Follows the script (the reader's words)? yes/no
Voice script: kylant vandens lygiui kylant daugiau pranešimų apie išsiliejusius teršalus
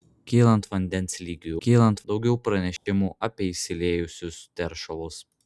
yes